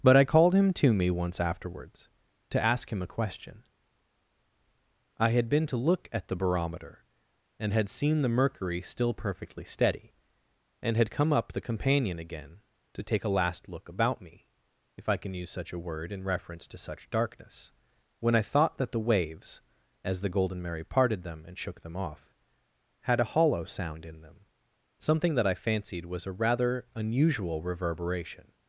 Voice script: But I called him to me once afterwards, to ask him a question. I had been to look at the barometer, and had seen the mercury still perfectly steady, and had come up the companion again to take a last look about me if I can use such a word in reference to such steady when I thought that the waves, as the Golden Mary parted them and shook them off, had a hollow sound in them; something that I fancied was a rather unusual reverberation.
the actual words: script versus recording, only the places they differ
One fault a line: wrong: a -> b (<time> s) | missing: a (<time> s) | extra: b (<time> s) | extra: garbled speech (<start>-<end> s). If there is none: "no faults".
wrong: steady -> darkness (17.1 s)